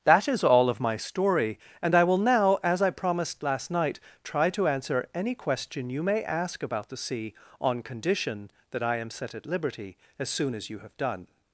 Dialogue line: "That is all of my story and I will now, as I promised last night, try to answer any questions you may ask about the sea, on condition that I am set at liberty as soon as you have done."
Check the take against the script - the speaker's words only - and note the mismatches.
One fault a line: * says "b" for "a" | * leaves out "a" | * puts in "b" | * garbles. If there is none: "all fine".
* says "question" for "questions"